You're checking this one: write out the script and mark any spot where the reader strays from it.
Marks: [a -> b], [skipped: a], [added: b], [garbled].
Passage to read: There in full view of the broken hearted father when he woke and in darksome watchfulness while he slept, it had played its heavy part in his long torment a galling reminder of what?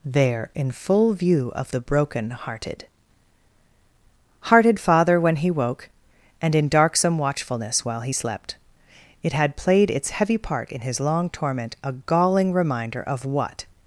There in full view of the broken hearted [added: hearted] father when he woke and in darksome watchfulness while he slept, it had played its heavy part in his long torment a galling reminder of what?